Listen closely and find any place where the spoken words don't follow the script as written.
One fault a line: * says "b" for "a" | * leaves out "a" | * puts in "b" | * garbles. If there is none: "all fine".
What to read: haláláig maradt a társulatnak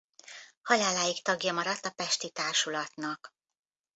* puts in "tagja"
* puts in "pesti"